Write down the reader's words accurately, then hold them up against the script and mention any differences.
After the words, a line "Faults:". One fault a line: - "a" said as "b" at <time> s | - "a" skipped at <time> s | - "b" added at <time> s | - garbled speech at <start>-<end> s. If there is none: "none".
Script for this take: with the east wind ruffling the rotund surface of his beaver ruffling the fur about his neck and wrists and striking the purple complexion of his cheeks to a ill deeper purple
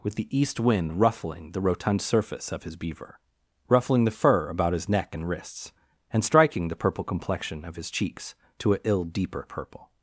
with the east wind ruffling the rotund surface of his beaver ruffling the fur about his neck and wrists and striking the purple complexion of his cheeks to a ill deeper purple
Faults:
none